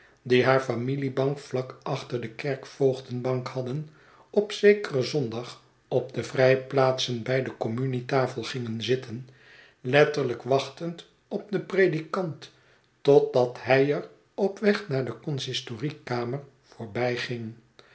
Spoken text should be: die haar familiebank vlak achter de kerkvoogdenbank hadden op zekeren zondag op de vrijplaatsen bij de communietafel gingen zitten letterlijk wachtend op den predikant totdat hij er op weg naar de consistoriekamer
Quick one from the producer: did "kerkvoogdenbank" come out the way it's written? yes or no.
yes